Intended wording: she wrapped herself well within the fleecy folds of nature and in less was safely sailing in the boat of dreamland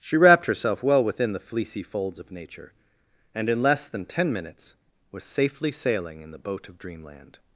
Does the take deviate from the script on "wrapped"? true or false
false